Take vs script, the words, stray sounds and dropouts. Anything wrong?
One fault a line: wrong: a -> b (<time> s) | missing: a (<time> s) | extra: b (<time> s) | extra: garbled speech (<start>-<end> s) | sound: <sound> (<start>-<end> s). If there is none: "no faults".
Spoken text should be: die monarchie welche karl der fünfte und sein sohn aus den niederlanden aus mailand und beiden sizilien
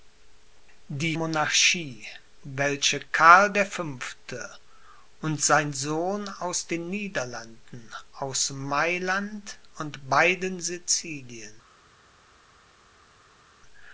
no faults